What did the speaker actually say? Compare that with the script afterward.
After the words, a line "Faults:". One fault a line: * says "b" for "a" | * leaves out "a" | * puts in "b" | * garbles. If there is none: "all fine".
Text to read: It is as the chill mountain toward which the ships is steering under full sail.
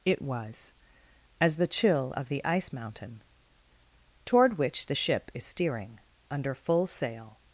It was as the chill of the ice mountain toward which the ship is steering under full sail.
Faults:
* says "was" for "is"
* puts in "of the ice"
* says "ship" for "ships"